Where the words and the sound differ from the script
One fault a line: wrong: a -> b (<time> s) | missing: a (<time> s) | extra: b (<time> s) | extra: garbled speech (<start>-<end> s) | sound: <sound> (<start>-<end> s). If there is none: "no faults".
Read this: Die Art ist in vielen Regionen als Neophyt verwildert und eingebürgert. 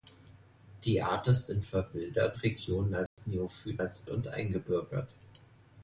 wrong: vielen -> verwildert (1.7 s)
sound: dropout (3.1-3.2 s)
wrong: verwildert -> als (3.8 s)